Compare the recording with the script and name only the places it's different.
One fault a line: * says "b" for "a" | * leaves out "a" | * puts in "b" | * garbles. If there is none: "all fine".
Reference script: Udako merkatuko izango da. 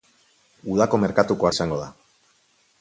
all fine